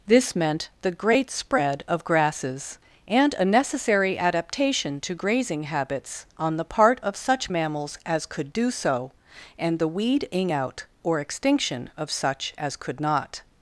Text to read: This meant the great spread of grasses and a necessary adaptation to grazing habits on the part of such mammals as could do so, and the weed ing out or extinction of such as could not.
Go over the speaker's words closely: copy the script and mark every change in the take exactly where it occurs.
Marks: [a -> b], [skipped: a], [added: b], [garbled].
This meant the great spread of grasses and a necessary adaptation to grazing habits on the part of such mammals as could do so, and the weed ing out or extinction of such as could not.